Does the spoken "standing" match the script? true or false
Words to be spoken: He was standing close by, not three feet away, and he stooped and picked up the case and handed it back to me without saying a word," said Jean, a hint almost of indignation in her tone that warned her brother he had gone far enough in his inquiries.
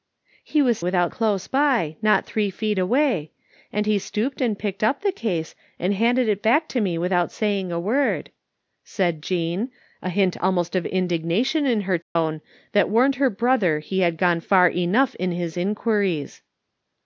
false